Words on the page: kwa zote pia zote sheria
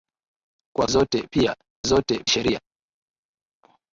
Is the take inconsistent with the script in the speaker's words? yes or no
no